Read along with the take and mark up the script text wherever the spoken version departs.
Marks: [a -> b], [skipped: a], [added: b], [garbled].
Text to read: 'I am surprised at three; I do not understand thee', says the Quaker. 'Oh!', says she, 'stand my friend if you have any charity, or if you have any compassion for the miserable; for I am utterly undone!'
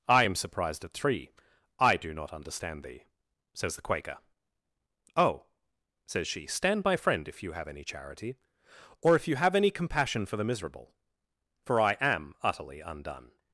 'I am surprised at three; I do not understand thee', says the Quaker. 'Oh!', says she, 'stand my friend if you have any charity, or if you have any compassion for the miserable; for I am utterly undone!'